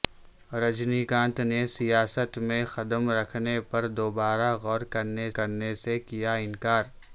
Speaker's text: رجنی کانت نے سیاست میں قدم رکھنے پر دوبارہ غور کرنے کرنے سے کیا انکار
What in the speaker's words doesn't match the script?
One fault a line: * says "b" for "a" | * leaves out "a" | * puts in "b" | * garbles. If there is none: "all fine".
all fine